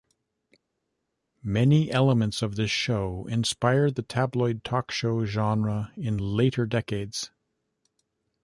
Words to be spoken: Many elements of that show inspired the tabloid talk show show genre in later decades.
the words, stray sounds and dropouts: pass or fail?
fail